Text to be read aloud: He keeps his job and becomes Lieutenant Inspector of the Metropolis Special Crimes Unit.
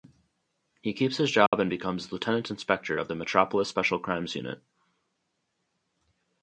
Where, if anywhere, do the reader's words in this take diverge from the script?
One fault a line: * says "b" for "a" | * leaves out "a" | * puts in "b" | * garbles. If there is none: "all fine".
all fine